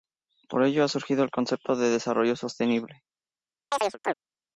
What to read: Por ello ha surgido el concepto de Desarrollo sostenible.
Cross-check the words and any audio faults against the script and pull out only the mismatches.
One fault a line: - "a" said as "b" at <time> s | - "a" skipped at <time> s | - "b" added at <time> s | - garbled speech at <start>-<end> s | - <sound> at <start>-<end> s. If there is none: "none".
- chirp at 3.7-4.1 s